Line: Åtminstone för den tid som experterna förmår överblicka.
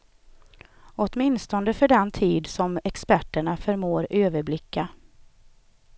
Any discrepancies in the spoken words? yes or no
no